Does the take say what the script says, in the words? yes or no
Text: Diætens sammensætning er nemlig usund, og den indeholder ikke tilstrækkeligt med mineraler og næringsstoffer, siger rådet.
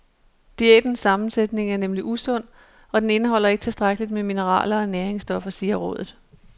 yes